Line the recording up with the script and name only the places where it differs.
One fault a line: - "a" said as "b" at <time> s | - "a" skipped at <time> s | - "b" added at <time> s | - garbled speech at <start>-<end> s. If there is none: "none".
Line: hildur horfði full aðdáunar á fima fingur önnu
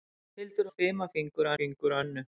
- "horfði full aðdáunar" skipped at 0.7 s
- "fingur" added at 1.6 s